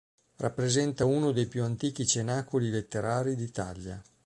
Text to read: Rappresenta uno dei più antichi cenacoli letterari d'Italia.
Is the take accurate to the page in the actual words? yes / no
yes